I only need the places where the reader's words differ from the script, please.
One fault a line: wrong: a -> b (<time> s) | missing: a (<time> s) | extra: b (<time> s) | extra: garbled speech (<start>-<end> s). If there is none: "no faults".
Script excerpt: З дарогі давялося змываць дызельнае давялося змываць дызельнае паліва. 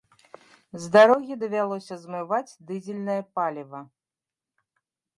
missing: давялося змываць дызельнае (3.2 s)